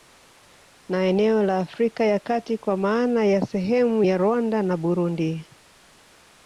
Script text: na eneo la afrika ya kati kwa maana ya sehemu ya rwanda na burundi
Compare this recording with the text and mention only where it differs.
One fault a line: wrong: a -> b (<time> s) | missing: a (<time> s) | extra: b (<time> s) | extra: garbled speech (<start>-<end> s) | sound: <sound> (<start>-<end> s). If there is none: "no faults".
no faults